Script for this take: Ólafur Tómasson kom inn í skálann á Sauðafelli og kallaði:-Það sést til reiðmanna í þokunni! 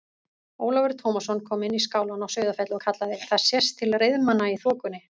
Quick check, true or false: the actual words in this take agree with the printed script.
true